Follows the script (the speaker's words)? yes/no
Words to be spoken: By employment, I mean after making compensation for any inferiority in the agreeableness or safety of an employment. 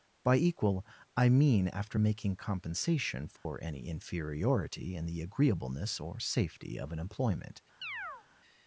no